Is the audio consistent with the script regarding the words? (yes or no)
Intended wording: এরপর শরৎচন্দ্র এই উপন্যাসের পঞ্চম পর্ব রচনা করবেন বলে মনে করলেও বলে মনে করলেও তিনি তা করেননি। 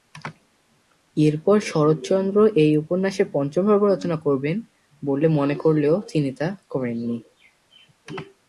no